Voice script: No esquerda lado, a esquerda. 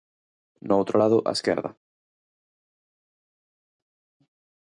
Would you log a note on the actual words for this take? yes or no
yes